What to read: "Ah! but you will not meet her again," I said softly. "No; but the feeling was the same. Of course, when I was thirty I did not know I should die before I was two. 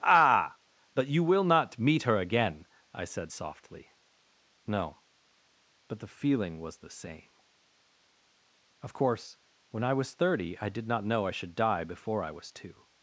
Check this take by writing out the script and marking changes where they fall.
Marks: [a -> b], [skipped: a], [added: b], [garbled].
"Ah! but you will not meet her again," I said softly. "No; but the feeling was the same. Of course, when I was thirty I did not know I should die before I was two.